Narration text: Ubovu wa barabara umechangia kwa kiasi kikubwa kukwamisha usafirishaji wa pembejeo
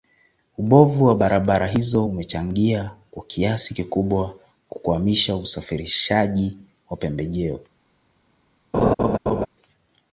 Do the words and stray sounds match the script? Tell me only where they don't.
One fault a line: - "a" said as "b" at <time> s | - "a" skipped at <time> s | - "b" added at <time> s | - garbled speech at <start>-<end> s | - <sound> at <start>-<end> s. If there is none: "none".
- "hizo" added at 1.7 s
- laugh at 8.7-9.5 s